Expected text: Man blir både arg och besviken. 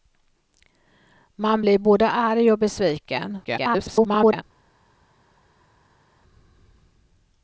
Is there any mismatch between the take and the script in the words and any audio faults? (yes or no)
yes